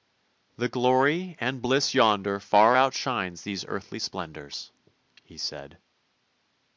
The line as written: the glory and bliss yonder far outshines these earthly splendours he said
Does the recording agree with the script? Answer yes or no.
yes